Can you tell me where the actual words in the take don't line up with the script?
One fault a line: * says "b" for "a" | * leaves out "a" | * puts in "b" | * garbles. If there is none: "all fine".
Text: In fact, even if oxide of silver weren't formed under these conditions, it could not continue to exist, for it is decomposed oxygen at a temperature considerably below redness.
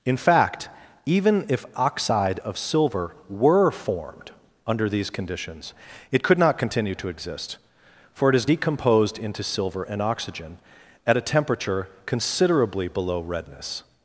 * says "were" for "weren't"
* puts in "into silver and"